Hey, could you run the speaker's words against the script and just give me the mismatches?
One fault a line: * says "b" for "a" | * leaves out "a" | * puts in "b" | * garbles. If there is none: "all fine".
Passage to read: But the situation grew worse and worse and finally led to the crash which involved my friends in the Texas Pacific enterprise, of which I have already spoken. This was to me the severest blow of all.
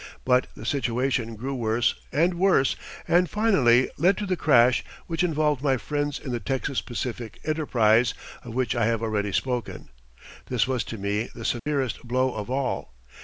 all fine